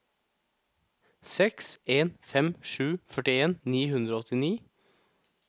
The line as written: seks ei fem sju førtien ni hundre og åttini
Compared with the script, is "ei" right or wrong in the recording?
wrong